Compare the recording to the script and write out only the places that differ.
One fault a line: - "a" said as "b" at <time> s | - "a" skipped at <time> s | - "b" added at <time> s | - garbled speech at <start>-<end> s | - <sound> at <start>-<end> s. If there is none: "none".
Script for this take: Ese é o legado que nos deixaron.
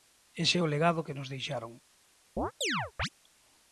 - chirp at 2.4-3.1 s